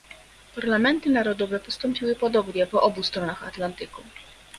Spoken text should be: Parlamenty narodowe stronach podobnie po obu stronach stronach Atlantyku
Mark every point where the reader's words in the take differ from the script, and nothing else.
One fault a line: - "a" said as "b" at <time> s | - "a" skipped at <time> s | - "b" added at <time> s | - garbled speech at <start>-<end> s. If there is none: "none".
- "stronach" said as "postąpiły" at 1.6 s
- "stronach" skipped at 3.4 s